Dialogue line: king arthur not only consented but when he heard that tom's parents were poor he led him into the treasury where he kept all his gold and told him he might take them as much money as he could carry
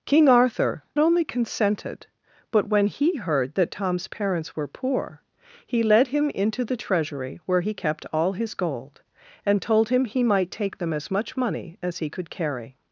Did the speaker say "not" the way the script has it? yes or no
no